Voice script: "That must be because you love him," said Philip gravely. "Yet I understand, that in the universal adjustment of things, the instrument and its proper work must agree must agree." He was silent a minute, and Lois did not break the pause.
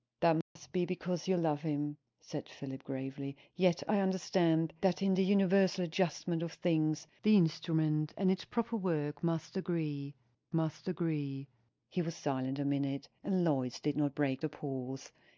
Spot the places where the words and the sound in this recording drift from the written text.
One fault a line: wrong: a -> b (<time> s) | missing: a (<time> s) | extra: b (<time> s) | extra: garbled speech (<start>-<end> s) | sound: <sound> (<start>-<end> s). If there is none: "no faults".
sound: dropout (0.4-0.6 s)